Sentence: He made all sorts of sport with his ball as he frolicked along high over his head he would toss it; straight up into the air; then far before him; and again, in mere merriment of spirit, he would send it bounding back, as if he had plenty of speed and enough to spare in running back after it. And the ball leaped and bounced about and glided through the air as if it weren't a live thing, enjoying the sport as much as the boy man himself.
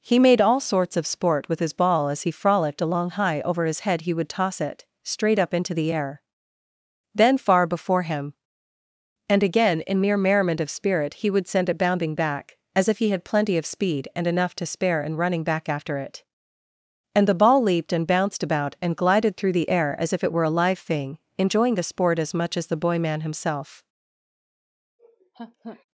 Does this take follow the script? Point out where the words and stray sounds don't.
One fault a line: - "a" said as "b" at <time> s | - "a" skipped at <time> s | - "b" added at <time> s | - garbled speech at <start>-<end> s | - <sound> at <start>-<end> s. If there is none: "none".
- "weren't" said as "were" at 20.3 s
- laugh at 25.0-25.8 s